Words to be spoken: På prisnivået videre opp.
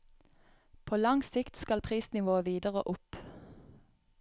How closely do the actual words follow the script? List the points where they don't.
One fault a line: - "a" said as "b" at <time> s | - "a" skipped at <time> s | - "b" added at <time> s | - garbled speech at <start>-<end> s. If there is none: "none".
- "lang sikt skal" added at 1.0 s